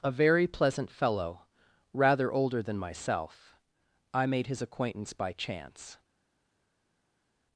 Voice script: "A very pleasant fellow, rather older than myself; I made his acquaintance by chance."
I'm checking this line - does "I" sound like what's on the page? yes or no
yes